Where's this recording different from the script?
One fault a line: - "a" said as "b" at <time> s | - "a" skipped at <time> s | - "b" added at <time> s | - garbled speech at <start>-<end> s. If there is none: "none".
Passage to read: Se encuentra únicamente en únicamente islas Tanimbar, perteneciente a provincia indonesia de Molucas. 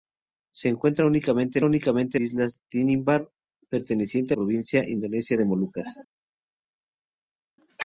none